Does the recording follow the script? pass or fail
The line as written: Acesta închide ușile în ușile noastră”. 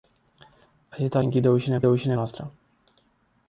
pass